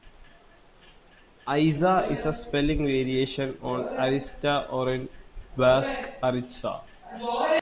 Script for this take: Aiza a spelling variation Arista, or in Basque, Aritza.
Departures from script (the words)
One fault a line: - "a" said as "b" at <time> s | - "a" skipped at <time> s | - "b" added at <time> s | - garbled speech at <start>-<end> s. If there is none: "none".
- "is" added at 2.1 s
- "on" added at 3.6 s